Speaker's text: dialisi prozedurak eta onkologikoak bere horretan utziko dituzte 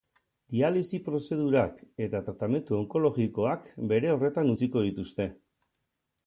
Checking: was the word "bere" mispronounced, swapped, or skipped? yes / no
no